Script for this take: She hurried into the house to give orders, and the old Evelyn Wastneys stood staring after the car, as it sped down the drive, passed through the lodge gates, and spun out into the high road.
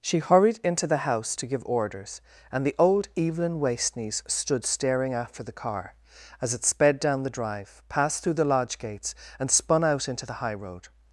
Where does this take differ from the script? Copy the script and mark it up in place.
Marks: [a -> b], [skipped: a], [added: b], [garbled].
She hurried into the house to give orders, and the old Evelyn Wastneys stood staring after the car, as it sped down the drive, passed through the lodge gates, and spun out into the high road.